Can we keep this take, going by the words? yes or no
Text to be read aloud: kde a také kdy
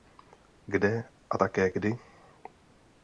yes